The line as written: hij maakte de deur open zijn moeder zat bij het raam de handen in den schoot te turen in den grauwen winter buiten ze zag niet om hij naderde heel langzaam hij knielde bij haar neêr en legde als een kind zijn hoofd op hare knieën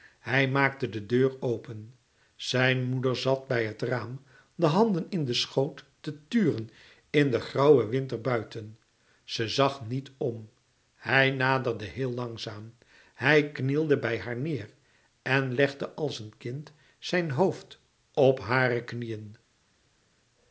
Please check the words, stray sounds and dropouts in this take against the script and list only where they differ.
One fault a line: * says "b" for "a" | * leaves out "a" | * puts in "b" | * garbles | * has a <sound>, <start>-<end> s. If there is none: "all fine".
all fine